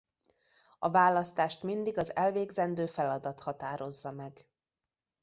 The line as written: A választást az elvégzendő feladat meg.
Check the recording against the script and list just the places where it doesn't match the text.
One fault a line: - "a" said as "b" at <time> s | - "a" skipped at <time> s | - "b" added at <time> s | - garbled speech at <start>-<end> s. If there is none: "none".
- "mindig" added at 1.6 s
- "határozza" added at 3.4 s